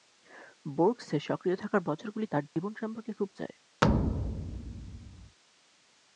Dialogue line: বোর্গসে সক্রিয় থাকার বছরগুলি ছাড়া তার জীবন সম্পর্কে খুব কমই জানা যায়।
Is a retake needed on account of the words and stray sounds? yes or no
yes